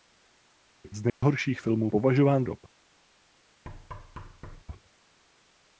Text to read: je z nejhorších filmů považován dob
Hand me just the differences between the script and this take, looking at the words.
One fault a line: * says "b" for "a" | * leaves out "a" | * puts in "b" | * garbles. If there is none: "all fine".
all fine